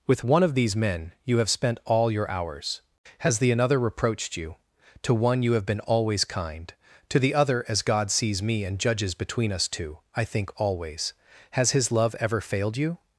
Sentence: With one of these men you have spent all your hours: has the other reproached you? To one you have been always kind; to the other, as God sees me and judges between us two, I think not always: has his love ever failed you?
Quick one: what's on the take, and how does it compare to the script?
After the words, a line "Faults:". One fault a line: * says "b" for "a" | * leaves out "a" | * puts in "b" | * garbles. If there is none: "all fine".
With one of these men you have spent all your hours: has the another reproached you? To one you have been always kind; to the other, as God sees me and judges between us two, I think always: has his love ever failed you?
Faults:
* says "another" for "other"
* leaves out "not"